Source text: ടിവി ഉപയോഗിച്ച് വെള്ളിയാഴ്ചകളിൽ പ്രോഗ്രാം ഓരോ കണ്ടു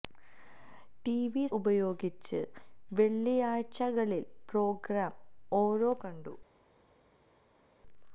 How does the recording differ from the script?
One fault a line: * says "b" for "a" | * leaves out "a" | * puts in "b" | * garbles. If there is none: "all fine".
all fine